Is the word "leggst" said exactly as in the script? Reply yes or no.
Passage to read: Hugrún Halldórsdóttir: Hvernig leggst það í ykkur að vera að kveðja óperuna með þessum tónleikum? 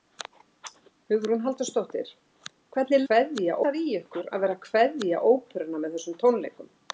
no